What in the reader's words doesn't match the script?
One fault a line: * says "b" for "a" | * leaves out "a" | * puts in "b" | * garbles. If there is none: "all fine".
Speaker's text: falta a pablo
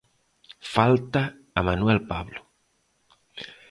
* puts in "manuel"